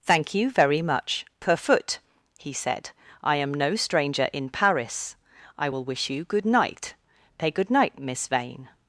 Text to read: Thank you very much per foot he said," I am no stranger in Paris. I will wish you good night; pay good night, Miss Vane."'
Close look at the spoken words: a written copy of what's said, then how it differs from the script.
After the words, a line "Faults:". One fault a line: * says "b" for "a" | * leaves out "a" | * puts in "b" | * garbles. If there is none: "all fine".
Thank you very much per foot he said," I am no stranger in Paris. I will wish you good night; pay good night, Miss Vane."'
Faults:
all fine